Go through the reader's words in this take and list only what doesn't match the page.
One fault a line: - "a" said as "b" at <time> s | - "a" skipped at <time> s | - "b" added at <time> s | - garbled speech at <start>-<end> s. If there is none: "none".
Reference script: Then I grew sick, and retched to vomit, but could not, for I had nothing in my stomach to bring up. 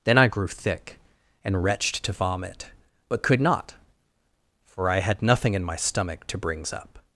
- "sick" said as "thick" at 0.5 s
- "bring" said as "brings" at 6.4 s